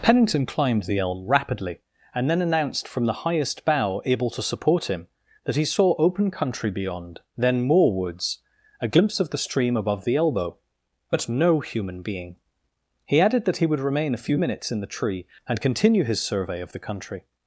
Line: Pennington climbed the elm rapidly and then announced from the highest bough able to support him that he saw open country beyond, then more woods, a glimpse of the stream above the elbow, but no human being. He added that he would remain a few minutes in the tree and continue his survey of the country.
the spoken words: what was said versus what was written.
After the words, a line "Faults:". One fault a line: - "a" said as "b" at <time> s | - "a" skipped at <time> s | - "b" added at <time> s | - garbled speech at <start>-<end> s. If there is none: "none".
Pennington climbed the elm rapidly and then announced from the highest bough able to support him that he saw open country beyond, then more woods, a glimpse of the stream above the elbow, but no human being. He added that he would remain a few minutes in the tree and continue his survey of the country.
Faults:
none